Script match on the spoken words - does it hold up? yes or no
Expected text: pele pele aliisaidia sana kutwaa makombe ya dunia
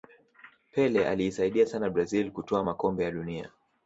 no